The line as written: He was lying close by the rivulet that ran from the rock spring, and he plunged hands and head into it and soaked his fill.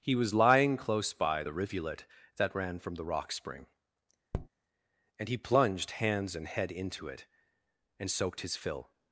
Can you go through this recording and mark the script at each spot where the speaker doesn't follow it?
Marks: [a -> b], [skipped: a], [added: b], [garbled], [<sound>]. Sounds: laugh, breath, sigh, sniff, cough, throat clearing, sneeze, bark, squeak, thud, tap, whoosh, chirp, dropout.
He was lying close by the rivulet that ran from the rock spring, [tap] and he plunged hands and head into it and soaked his fill.